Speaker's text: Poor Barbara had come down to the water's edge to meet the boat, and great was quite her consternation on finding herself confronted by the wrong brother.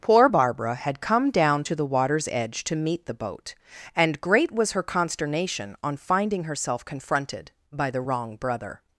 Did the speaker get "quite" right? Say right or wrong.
wrong